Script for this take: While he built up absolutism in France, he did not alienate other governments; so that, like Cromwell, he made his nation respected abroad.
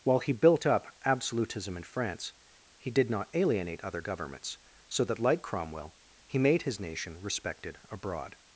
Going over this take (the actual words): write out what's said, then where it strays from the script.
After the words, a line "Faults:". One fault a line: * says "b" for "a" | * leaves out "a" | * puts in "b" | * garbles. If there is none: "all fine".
While he built up absolutism in France, he did not alienate other governments; so that, like Cromwell, he made his nation respected abroad.
Faults:
all fine